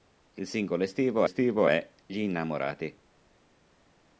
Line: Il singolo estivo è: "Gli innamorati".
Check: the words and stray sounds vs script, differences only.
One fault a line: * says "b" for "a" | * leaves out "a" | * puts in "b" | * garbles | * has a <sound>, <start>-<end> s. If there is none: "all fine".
* puts in "estivo"